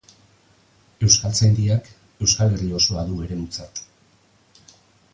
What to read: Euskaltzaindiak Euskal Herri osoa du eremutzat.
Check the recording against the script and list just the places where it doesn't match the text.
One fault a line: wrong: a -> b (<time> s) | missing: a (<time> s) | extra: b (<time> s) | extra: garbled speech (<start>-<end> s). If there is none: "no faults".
no faults